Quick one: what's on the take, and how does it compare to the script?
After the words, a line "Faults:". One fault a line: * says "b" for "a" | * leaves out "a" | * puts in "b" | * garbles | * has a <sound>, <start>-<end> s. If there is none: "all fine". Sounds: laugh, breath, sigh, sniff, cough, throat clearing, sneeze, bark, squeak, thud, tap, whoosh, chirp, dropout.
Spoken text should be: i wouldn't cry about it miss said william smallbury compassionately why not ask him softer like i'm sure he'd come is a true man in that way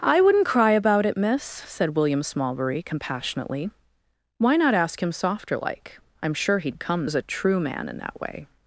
i wouldn't cry about it miss said william smallbury compassionately why not ask him softer like i'm sure he'd come is a true man in that way
Faults:
all fine